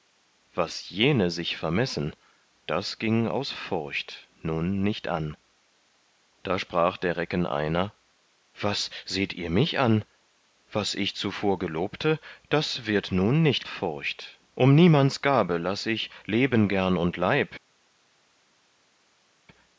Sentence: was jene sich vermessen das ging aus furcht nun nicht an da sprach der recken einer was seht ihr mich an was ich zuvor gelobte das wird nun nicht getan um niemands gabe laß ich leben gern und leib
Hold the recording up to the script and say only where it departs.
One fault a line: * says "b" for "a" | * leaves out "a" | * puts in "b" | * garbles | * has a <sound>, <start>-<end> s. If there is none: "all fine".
* says "furcht" for "getan"